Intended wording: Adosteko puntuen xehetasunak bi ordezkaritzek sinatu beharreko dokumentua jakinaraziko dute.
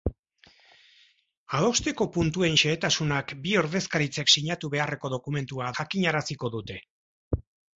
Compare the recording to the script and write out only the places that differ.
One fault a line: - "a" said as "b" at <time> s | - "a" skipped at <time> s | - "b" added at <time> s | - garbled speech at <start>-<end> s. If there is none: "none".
none